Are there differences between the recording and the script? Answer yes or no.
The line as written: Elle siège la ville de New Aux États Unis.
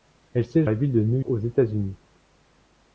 no